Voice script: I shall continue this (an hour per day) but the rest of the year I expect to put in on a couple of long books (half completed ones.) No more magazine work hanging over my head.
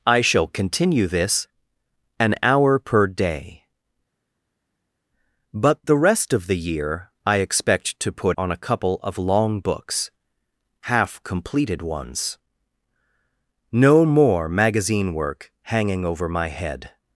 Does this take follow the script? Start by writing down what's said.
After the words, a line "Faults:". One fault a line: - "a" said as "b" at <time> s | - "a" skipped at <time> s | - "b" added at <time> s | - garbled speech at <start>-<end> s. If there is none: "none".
I shall continue this (an hour per day) but the rest of the year I expect to put on a couple of long books (half completed ones.) No more magazine work hanging over my head.
Faults:
- "in" skipped at 8.4 s